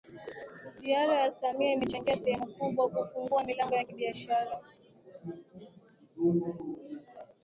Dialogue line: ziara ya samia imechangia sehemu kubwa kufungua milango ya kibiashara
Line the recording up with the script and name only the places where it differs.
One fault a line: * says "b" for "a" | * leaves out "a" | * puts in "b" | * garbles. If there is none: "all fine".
all fine